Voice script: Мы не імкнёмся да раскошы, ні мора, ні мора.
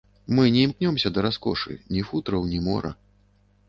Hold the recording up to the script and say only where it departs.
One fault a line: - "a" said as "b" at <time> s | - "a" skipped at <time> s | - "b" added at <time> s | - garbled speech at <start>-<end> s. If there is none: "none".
- "мора" said as "футраў" at 2.1 s